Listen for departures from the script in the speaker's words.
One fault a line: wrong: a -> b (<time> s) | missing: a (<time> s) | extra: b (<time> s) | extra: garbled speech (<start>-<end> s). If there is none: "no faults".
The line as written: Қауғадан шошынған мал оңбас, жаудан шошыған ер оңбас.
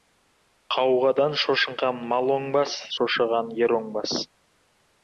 missing: жаудан (2.8 s)